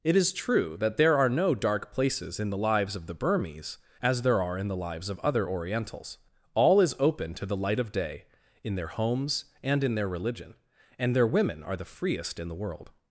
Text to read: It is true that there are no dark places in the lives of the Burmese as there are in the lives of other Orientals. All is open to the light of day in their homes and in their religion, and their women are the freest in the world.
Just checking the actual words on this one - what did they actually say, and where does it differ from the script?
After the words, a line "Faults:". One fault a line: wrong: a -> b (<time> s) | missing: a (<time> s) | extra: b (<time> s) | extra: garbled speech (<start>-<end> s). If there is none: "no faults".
It is true that there are no dark places in the lives of the Burmese as there are in the lives of other Orientals. All is open to the light of day in their homes and in their religion, and their women are the freest in the world.
Faults:
no faults